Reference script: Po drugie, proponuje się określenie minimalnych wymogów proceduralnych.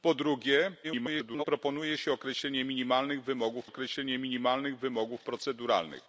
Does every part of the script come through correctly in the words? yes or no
no